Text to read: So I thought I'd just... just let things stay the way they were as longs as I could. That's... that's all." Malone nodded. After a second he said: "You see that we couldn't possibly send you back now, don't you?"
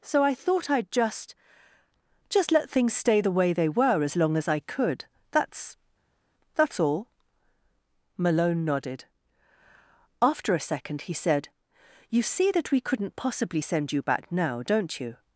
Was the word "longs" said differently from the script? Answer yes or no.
yes